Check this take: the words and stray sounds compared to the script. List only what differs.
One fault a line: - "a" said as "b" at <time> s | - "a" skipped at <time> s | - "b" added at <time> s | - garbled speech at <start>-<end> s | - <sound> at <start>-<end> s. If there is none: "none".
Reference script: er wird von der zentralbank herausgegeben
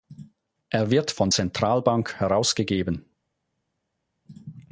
- "der" skipped at 1.3 s